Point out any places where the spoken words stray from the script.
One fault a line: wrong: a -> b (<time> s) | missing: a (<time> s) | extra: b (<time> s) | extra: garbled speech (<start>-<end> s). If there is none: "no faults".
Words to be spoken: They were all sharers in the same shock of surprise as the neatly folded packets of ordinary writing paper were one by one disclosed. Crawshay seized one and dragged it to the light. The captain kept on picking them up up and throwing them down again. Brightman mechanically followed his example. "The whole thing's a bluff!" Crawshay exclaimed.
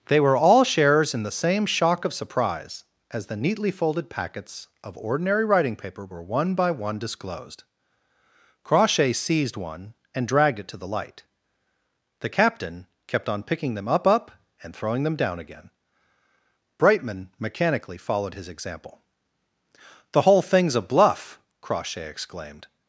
no faults